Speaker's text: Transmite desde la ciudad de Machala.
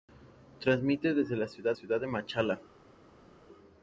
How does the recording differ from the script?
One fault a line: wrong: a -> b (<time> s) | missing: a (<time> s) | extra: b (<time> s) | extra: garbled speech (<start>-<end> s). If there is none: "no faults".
extra: ciudad (1.7 s)